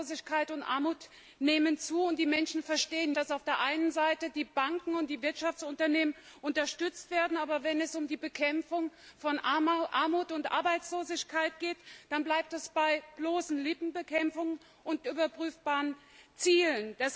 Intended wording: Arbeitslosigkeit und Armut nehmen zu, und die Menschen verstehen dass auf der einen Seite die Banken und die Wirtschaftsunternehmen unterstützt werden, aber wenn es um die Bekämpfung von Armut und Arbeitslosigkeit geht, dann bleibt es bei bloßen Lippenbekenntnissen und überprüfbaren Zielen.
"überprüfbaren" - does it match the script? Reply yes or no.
yes